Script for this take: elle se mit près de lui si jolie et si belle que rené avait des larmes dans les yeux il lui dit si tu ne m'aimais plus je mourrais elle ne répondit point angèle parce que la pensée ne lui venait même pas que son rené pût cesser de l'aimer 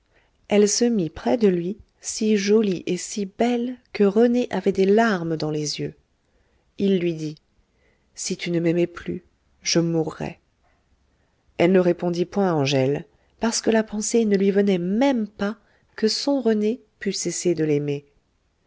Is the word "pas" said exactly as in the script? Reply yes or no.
yes